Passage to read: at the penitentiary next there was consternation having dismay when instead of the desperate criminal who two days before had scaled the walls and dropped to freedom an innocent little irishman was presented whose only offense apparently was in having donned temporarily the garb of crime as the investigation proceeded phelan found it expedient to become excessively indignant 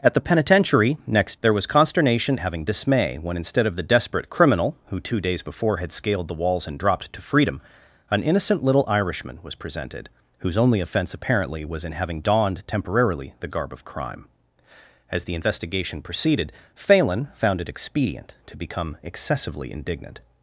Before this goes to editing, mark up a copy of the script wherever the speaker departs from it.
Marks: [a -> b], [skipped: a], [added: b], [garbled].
at the penitentiary next there was consternation having dismay when instead of the desperate criminal who two days before had scaled the walls and dropped to freedom an innocent little irishman was presented whose only offense apparently was in having donned temporarily the garb of crime as the investigation proceeded phelan found it expedient to become excessively indignant